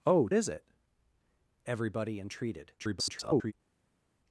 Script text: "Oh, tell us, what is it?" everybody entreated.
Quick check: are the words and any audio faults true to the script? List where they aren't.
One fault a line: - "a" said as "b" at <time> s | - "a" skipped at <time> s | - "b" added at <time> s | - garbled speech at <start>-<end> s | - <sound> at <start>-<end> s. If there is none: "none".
- "tell us what" skipped at 0.3 s
- garbled speech at 2.8-3.5 s